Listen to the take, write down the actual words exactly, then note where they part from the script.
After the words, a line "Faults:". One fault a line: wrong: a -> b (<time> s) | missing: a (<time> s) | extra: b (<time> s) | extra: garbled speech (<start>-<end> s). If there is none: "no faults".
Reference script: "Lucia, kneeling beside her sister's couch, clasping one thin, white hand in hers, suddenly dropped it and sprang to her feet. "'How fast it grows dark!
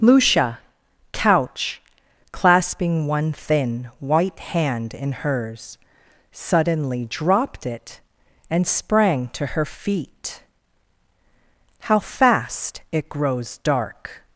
"Lucia, couch, clasping one thin, white hand in hers, suddenly dropped it and sprang to her feet. "'How fast it grows dark!
Faults:
missing: kneeling beside her sister's (0.6 s)